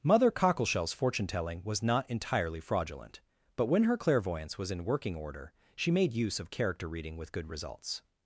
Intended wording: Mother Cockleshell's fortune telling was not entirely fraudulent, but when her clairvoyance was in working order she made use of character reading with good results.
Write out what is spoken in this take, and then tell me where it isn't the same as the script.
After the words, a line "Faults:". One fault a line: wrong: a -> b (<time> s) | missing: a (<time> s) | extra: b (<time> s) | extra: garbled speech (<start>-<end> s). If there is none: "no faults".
Mother Cockleshell's fortune telling was not entirely fraudulent, but when her clairvoyance was in working order she made use of character reading with good results.
Faults:
no faults